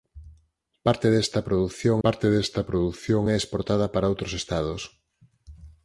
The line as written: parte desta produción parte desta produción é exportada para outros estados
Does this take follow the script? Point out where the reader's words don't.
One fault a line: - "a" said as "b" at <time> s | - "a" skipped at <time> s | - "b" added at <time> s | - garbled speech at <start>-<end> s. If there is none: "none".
none